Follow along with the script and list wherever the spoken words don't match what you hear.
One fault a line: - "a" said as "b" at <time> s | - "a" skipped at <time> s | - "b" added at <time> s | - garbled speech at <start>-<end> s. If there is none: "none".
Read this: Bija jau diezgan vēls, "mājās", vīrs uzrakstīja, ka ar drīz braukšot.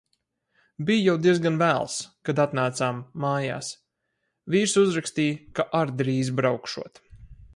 - "kad atnācām" added at 2.3 s